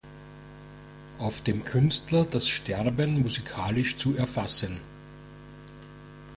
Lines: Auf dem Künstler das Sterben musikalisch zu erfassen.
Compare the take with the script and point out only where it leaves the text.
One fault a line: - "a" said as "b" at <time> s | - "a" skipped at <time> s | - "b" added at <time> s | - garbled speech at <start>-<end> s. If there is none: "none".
none